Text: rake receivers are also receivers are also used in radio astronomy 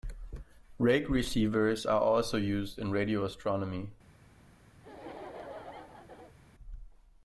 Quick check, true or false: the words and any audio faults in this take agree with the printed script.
false